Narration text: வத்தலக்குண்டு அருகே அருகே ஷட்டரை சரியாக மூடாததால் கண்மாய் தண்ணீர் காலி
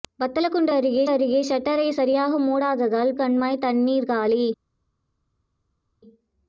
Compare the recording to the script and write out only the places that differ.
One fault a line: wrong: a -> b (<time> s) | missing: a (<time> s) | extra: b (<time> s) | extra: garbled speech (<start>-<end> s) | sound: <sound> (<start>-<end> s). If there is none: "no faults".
no faults